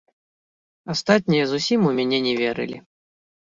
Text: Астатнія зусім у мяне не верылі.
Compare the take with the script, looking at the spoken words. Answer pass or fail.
pass